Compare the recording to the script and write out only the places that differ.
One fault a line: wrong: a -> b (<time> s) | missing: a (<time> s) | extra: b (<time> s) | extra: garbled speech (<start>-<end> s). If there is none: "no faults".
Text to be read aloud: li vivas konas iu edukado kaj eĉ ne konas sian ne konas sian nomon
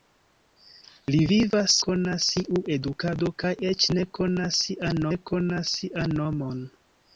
no faults